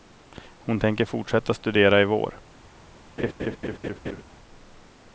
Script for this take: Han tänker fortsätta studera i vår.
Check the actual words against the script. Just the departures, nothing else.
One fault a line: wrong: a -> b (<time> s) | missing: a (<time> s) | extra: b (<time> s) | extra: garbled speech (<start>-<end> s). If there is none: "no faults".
wrong: Han -> Hon (0.6 s)